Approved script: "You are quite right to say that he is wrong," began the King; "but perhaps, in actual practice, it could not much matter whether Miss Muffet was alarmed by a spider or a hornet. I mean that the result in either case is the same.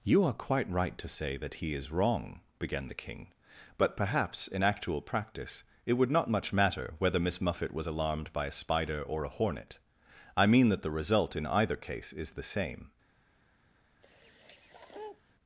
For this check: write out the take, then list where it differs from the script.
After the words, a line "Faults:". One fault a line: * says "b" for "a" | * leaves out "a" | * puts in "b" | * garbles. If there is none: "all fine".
"You are quite right to say that he is wrong," began the King; "but perhaps, in actual practice, it would not much matter whether Miss Muffet was alarmed by a spider or a hornet. I mean that the result in either case is the same.
Faults:
* says "would" for "could"